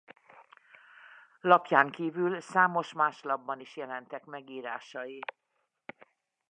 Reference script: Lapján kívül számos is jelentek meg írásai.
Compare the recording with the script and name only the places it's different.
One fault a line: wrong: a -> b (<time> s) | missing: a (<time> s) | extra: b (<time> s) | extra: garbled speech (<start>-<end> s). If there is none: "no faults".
extra: más lapban (2.9 s)